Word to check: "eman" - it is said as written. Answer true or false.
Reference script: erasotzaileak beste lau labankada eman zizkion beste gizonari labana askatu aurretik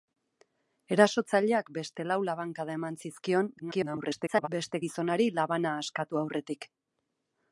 true